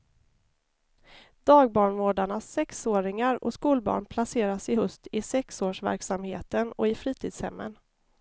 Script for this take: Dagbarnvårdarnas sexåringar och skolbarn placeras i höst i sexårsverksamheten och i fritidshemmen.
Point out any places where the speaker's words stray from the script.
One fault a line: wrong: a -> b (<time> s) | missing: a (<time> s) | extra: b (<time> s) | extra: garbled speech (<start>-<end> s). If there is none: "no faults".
no faults